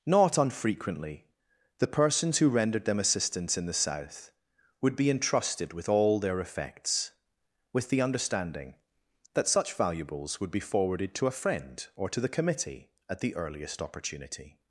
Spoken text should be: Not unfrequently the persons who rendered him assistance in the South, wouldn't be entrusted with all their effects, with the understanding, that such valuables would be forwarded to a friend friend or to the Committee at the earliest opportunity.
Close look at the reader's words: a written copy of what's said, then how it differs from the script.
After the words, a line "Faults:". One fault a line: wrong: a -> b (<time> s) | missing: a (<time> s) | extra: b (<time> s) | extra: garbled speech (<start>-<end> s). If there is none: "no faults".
Not unfrequently the persons who rendered them assistance in the South, would be entrusted with all their effects, with the understanding, that such valuables would be forwarded to a friend or to the Committee at the earliest opportunity.
Faults:
wrong: him -> them (2.9 s)
wrong: wouldn't -> would (4.8 s)
missing: friend (11.9 s)